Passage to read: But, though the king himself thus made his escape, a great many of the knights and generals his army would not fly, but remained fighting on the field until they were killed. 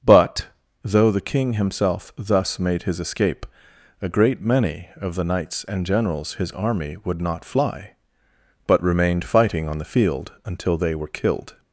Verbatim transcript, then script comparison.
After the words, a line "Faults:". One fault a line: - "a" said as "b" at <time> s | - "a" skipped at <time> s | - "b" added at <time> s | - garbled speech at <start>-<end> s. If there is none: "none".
But, though the king himself thus made his escape, a great many of the knights and generals his army would not fly, but remained fighting on the field until they were killed.
Faults:
none